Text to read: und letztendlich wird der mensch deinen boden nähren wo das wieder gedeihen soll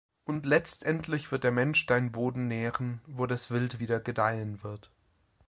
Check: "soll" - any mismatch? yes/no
yes